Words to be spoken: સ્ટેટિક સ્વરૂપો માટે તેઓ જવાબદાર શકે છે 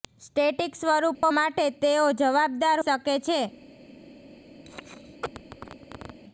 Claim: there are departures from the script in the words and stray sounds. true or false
true